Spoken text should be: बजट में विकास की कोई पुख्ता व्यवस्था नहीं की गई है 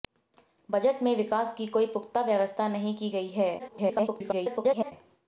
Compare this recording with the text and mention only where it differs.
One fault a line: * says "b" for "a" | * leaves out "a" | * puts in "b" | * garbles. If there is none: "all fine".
* garbles